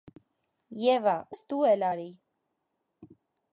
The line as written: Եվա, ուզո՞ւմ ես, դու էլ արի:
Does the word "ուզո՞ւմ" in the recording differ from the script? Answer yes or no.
yes